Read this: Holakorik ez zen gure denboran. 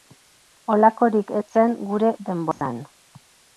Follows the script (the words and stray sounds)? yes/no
no